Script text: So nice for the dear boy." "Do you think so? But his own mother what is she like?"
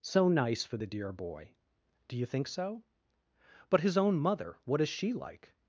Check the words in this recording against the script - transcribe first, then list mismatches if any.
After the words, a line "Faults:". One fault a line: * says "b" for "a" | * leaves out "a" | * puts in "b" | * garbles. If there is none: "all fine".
So nice for the dear boy." "Do you think so? But his own mother what is she like?"
Faults:
all fine